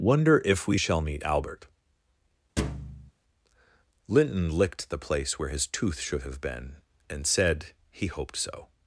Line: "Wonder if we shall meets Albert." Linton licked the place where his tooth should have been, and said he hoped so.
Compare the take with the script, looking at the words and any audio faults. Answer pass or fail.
fail